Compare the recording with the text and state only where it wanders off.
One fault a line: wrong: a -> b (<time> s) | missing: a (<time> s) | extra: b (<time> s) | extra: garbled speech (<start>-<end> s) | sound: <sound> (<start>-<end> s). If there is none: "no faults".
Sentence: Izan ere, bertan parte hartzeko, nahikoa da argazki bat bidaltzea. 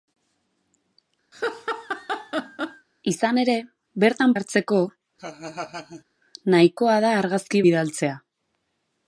sound: laugh (1.3-2.9 s)
missing: parte (4.3 s)
sound: laugh (5.2-6.0 s)
missing: bat (7.6 s)